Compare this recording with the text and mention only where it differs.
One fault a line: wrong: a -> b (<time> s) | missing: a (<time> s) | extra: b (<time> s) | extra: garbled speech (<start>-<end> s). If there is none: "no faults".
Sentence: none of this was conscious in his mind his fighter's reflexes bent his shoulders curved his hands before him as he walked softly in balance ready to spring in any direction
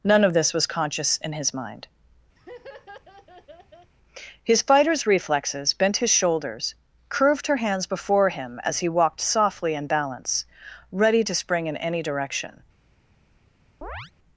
wrong: his -> her (7.4 s)